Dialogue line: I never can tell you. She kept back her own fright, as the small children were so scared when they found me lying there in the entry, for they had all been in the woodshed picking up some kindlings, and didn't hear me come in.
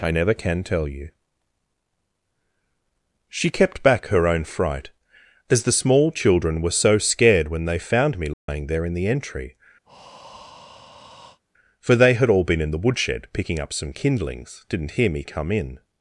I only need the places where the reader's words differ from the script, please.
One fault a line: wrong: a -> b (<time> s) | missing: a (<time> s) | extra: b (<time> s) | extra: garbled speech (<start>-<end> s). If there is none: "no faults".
missing: and (14.6 s)